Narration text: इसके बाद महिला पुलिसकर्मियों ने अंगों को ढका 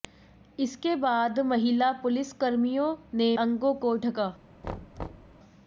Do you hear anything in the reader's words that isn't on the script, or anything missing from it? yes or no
no